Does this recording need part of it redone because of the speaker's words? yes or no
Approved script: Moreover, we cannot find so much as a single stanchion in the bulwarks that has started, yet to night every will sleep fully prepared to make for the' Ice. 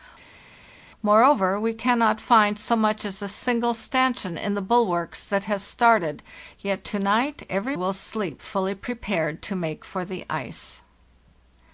no